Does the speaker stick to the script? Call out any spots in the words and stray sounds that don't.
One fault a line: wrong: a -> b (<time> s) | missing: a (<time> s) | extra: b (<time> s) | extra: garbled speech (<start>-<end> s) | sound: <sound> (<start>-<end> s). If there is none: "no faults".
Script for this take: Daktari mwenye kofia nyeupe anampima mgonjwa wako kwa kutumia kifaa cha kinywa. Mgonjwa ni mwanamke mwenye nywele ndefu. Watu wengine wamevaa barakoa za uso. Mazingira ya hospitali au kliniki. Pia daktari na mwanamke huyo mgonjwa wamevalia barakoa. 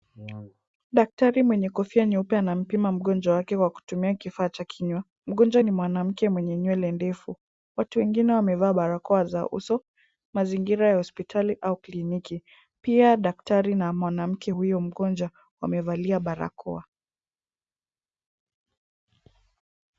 wrong: wako -> wake (3.4 s)